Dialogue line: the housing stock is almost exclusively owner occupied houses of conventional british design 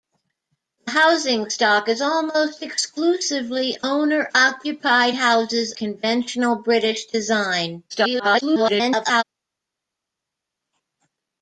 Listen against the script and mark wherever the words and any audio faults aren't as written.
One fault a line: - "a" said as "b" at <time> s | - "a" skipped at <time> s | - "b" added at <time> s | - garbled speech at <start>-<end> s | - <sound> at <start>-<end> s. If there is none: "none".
- "of" skipped at 5.7 s
- garbled speech at 7.9-9.2 s